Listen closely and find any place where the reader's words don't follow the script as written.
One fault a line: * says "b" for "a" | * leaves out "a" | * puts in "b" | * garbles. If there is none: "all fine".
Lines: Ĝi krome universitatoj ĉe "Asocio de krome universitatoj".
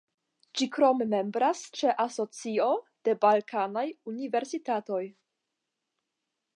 * says "membras" for "universitatoj"
* says "balkanaj" for "krome"